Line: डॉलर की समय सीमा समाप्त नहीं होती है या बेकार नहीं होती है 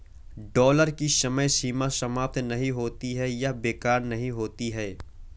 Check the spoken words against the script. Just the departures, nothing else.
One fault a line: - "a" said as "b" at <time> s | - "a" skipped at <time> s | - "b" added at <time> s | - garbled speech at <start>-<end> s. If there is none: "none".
none